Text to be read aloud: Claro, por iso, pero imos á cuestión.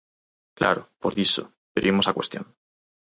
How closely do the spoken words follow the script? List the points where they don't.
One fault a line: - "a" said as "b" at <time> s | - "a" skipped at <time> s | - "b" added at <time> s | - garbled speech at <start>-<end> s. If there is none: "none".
none